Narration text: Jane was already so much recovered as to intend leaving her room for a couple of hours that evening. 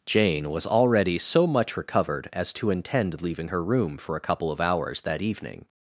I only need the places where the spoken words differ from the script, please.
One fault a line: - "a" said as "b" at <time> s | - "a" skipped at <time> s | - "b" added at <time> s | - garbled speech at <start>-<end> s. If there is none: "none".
none